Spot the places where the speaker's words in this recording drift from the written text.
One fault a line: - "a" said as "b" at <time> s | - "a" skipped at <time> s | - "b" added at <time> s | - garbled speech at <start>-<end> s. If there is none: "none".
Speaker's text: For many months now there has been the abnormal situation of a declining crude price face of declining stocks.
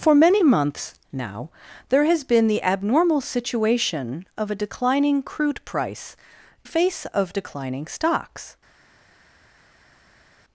none